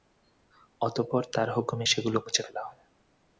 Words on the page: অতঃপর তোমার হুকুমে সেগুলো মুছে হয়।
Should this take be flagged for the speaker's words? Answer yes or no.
yes